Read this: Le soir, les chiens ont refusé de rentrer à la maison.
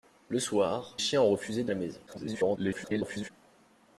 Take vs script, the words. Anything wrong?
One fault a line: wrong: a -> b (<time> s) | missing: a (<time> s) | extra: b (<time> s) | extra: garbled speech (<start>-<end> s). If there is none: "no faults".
missing: les (1.0 s)
missing: rentrer (1.7 s)
extra: garbled speech (2.1-3.3 s)